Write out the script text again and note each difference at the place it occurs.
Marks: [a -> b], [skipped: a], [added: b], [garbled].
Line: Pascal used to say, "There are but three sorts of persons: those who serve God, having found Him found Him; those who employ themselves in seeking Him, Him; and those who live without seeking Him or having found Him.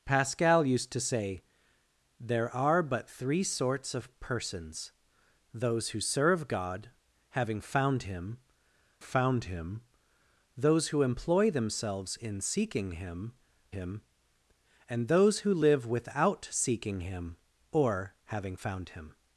Pascal used to say, "There are but three sorts of persons: those who serve God, having found Him found Him; those who employ themselves in seeking Him, Him; and those who live without seeking Him or having found Him.